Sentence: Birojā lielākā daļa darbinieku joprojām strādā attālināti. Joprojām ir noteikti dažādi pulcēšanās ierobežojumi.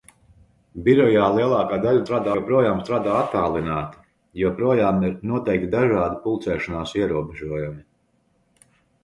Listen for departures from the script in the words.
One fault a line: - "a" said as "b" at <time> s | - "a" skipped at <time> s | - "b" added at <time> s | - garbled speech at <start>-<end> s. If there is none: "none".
- "darbinieku" said as "strādā" at 2.0 s